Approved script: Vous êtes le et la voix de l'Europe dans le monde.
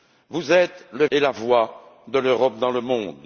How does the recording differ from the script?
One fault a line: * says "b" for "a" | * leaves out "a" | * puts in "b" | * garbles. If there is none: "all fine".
all fine